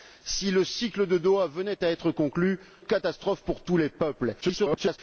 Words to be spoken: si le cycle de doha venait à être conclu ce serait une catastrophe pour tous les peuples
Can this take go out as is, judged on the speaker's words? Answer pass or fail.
fail